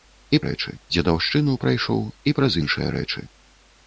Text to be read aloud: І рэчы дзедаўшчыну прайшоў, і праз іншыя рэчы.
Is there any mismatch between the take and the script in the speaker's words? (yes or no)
no